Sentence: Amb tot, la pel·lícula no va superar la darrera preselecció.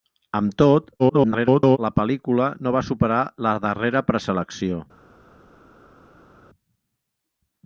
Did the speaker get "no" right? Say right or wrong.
right